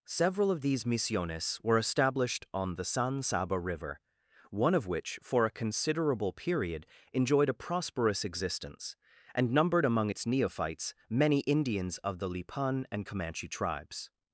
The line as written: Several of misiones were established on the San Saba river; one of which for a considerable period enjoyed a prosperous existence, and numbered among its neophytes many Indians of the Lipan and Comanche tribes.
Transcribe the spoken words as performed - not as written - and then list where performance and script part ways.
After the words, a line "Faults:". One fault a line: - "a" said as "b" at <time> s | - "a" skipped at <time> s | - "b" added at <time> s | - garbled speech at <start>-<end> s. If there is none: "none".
Several of these misiones were established on the San Saba river; one of which for a considerable period enjoyed a prosperous existence, and numbered among its neophytes many Indians of the Lipan and Comanche tribes.
Faults:
- "these" added at 0.6 s